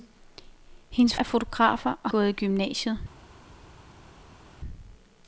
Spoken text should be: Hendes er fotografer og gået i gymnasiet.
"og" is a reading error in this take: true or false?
false